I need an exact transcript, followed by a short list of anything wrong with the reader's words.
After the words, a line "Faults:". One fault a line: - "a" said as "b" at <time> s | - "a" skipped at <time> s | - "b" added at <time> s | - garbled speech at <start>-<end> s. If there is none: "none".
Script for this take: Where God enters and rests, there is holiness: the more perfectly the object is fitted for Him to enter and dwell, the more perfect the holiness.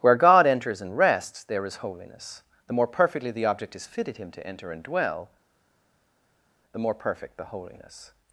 Where God enters and rests, there is holiness: the more perfectly the object is fitted Him to enter and dwell, the more perfect the holiness.
Faults:
- "for" skipped at 4.2 s